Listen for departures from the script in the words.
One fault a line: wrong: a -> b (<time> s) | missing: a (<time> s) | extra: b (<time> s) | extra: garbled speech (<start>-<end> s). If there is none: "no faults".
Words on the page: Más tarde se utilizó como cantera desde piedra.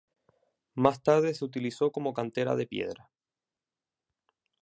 wrong: desde -> de (2.5 s)